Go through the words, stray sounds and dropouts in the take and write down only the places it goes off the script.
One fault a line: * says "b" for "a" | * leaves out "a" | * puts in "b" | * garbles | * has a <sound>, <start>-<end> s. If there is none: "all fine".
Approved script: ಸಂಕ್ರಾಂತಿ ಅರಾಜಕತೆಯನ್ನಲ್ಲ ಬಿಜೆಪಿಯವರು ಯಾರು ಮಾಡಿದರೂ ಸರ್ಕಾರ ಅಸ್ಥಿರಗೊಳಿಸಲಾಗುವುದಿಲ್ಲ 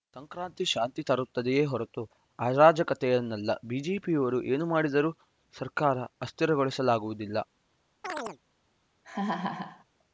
* puts in "ಶಾಂತಿ ತರುತ್ತದೆಯೇ ಹೊರತು"
* says "ಏನು" for "ಯಾರು"
* has a chirp, 8.0-8.4 s
* has a laugh, 9.0-9.8 s